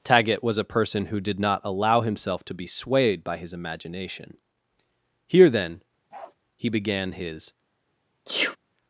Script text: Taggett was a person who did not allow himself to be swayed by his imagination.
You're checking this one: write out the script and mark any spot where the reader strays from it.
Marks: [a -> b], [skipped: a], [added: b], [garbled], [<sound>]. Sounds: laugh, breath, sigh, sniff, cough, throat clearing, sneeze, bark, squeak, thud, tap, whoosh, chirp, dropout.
Taggett was a person who did not allow himself to be swayed by his imagination. [added: Here then he began his] [bark] [sneeze]